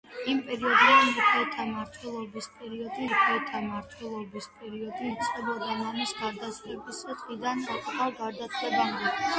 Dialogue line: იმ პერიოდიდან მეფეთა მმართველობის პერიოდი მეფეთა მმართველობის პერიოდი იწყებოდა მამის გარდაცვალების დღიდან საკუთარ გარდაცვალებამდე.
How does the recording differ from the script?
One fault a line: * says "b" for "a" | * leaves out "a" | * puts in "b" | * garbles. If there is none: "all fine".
all fine